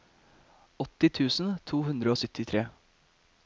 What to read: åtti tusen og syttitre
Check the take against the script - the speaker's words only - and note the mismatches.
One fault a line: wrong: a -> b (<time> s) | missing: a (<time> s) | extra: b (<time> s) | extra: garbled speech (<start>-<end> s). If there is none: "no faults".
extra: to hundre (1.7 s)